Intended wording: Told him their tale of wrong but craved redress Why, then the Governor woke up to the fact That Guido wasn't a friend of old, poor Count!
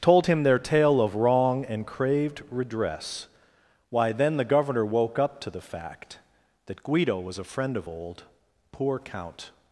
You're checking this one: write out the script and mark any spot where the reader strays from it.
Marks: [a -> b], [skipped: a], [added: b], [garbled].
Told him their tale of wrong [but -> and] craved redress Why, then the Governor woke up to the fact That Guido [wasn't -> was] a friend of old, poor Count!